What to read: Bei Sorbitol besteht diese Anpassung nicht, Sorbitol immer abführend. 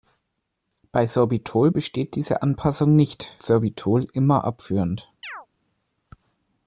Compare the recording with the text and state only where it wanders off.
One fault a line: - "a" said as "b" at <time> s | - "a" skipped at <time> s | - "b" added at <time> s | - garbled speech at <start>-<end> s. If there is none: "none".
none